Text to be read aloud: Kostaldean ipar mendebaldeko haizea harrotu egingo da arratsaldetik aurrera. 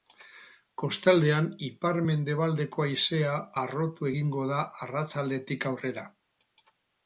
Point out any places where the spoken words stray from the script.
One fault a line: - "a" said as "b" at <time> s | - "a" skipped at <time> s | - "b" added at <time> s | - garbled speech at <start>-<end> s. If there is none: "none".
none